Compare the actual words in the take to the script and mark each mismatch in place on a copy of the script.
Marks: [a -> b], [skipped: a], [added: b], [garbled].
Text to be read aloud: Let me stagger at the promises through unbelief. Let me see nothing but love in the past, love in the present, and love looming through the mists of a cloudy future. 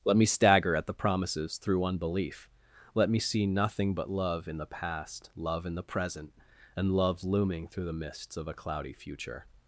Let me stagger at the promises through unbelief. Let me see nothing but love in the past, love in the present, and love looming through the mists of a cloudy future.